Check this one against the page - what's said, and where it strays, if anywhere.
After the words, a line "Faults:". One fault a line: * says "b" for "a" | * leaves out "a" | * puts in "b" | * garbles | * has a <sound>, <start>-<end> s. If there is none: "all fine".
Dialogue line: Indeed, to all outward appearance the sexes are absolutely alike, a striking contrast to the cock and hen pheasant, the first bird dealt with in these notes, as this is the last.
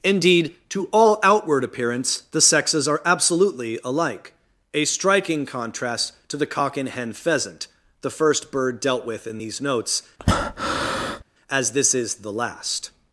Indeed, to all outward appearance the sexes are absolutely alike, a striking contrast to the cock and hen pheasant, the first bird dealt with in these notes, as this is the last.
Faults:
* has a breath, 10.2-11.2 s